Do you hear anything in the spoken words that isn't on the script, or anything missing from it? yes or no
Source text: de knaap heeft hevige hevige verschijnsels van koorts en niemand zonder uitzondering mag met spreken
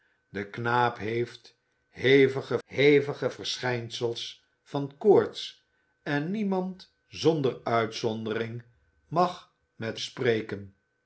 no